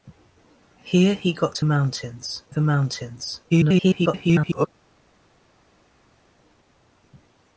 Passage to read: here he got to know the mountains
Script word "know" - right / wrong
wrong